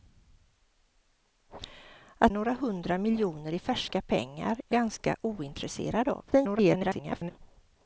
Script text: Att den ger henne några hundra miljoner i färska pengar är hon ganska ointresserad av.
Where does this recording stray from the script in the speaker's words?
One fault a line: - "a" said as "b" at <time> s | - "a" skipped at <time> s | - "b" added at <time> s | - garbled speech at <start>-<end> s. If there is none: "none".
- "den ger henne" skipped at 2.3 s
- "hon" skipped at 4.7 s
- garbled speech at 6.3-7.3 s